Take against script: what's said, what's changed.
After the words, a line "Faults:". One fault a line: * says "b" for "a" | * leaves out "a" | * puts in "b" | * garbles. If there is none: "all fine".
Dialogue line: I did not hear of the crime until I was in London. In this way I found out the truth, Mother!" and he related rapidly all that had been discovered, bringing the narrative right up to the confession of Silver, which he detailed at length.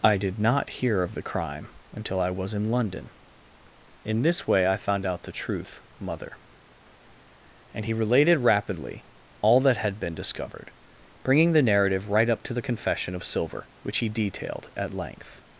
I did not hear of the crime until I was in London. In this way I found out the truth, Mother!" and he related rapidly all that had been discovered, bringing the narrative right up to the confession of Silver, which he detailed at length.
Faults:
all fine